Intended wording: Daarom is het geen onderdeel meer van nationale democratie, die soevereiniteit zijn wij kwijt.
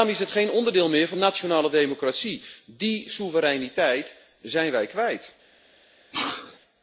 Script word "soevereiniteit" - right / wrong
right